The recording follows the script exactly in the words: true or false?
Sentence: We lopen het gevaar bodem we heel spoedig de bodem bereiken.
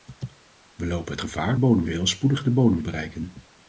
true